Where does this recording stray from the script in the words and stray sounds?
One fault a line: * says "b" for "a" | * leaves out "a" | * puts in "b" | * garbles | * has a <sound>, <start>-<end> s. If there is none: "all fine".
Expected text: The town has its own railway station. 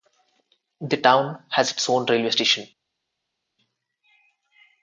all fine